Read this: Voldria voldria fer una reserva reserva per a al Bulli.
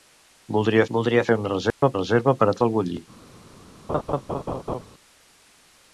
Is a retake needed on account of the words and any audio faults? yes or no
yes